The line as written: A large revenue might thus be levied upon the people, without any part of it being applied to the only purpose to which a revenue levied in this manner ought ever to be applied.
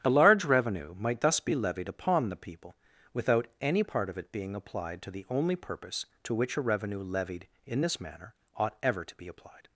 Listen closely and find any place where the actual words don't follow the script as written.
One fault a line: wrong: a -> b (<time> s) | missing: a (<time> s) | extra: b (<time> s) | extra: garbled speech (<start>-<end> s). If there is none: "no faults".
no faults